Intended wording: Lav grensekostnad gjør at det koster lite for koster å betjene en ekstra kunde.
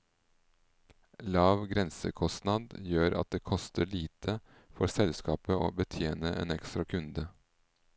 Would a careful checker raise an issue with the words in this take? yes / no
yes